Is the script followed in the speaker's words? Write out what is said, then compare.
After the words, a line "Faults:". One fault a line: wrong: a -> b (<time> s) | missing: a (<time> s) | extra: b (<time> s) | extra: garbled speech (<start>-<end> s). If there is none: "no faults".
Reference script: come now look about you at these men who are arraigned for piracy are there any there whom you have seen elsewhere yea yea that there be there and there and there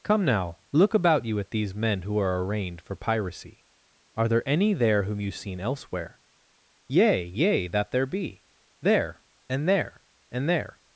come now look about you at these men who are arraigned for piracy are there any there whom you seen elsewhere yea yea that there be there and there and there
Faults:
missing: have (5.3 s)